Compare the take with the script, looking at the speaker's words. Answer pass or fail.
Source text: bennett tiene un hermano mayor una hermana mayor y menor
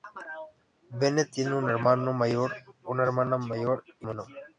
pass